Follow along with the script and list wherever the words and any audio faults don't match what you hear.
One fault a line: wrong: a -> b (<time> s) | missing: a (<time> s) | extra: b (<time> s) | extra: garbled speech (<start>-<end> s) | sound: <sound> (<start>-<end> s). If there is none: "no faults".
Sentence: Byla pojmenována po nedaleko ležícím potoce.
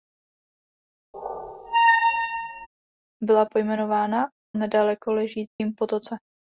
sound: squeak (1.1-2.7 s)
missing: po (4.3 s)
sound: dropout (5.5-5.6 s)